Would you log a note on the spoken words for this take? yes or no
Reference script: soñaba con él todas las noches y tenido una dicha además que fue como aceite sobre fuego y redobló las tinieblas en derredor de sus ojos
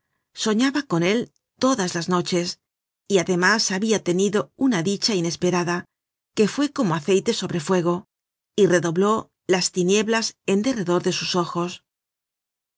yes